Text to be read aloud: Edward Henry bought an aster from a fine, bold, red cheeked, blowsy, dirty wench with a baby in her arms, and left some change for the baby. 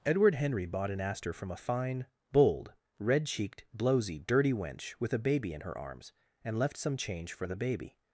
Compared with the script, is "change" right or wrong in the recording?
right